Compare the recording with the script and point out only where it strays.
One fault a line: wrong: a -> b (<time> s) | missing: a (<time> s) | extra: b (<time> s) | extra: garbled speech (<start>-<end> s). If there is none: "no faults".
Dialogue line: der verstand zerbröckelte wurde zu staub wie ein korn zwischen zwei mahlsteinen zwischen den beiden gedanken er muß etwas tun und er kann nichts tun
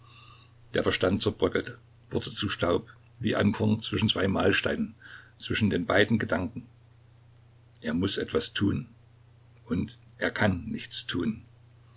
no faults